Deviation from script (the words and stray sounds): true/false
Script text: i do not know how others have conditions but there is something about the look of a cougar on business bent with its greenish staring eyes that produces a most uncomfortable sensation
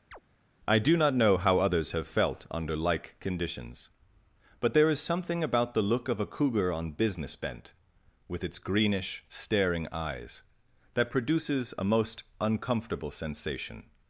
true